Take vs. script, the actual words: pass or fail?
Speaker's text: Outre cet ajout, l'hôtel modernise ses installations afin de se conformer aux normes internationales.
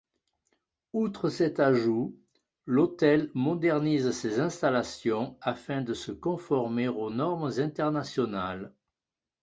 pass